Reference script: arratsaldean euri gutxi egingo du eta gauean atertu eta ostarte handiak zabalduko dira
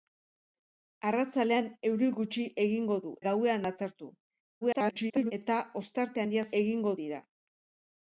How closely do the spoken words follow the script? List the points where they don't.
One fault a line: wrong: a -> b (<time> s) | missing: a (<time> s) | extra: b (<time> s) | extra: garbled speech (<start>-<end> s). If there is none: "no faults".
missing: eta (3.1 s)
extra: garbled speech (4.6-5.3 s)
wrong: zabalduko -> egingo (6.6 s)